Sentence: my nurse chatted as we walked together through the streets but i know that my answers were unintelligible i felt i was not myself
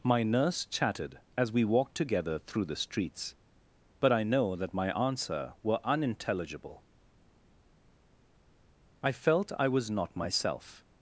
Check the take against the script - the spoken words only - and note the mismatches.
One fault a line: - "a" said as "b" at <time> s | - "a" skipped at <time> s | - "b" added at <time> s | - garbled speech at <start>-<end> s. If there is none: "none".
- "answers" said as "answer" at 5.0 s